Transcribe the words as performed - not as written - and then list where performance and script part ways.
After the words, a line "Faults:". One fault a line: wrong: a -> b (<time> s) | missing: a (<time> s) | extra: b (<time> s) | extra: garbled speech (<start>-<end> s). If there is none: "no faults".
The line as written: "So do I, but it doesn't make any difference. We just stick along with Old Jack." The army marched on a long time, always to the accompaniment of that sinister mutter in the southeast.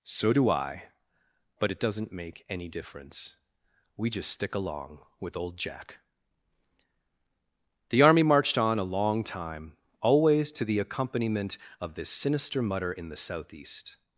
"So do I, but it doesn't make any difference. We just stick along with Old Jack." The army marched on a long time, always to the accompaniment of this sinister mutter in the southeast.
Faults:
wrong: that -> this (11.9 s)